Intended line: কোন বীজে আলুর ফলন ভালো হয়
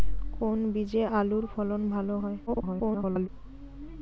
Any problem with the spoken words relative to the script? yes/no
yes